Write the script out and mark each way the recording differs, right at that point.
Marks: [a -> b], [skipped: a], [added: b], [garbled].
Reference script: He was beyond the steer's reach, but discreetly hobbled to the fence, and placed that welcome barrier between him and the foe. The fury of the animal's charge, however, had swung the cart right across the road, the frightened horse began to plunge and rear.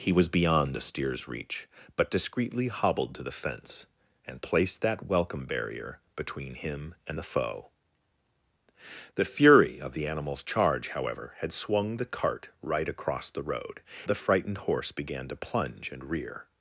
He was beyond the steer's reach, but discreetly hobbled to the fence, and placed that welcome barrier between him and the foe. The fury of the animal's charge, however, had swung the cart right across the road, the frightened horse began to plunge and rear.